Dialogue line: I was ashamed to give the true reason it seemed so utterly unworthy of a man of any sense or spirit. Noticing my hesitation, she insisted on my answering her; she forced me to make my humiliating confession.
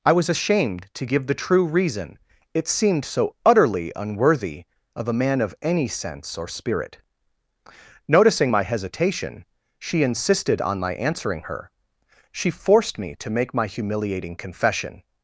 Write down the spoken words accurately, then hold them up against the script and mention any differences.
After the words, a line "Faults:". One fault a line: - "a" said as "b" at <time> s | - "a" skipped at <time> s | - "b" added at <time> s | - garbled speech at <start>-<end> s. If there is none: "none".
I was ashamed to give the true reason it seemed so utterly unworthy of a man of any sense or spirit. Noticing my hesitation, she insisted on my answering her; she forced me to make my humiliating confession.
Faults:
none